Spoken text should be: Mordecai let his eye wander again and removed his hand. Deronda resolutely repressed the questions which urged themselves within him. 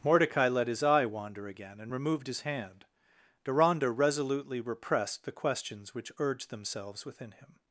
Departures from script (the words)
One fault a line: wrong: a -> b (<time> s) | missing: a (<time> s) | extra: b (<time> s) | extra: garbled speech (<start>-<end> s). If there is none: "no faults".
no faults